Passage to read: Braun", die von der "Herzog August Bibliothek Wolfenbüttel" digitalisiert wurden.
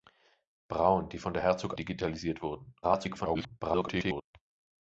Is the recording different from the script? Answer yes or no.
yes